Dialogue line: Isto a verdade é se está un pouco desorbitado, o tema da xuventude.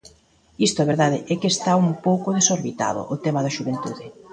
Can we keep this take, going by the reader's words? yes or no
no